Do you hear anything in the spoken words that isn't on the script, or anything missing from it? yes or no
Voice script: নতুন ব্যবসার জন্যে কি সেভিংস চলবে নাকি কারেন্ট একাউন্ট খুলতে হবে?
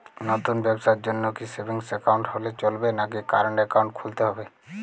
yes